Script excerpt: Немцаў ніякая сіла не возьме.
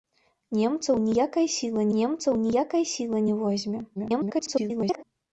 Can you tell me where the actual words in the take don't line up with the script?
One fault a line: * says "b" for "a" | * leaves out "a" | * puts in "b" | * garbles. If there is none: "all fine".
* puts in "немцаў ніякая сіла"
* garbles